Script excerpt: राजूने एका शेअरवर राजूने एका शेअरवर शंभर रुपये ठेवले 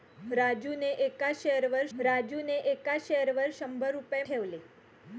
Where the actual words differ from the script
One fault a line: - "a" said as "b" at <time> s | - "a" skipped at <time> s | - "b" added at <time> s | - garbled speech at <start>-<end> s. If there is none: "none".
none